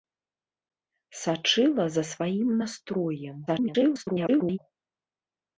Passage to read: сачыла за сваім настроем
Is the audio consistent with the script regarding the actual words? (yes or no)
no